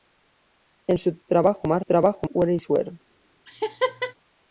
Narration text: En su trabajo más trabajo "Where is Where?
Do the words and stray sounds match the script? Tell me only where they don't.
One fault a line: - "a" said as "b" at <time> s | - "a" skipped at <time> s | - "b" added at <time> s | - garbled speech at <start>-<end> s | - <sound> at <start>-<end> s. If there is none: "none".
- laugh at 3.5-4.1 s